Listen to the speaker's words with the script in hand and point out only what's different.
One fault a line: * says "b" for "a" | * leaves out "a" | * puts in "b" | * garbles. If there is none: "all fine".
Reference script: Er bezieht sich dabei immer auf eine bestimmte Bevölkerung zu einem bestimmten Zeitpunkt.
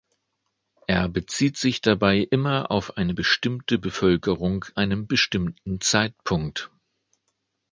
* leaves out "zu"